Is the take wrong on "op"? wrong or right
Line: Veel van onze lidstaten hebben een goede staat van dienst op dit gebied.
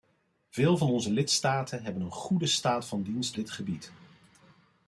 wrong